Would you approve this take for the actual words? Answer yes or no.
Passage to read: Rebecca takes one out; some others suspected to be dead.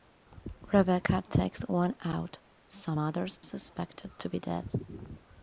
yes